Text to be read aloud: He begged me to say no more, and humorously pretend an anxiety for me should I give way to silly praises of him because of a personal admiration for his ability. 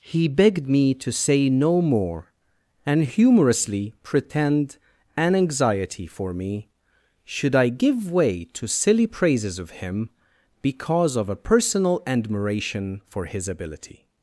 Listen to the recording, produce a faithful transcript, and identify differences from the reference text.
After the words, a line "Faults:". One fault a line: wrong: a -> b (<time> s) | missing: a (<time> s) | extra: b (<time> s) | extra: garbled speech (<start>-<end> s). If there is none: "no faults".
He begged me to say no more, and humorously pretend an anxiety for me should I give way to silly praises of him because of a personal admiration for his ability.
Faults:
no faults